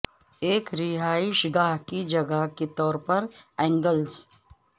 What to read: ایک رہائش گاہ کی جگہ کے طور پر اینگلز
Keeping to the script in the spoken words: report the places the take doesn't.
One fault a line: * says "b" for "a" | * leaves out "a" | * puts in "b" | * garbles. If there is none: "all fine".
all fine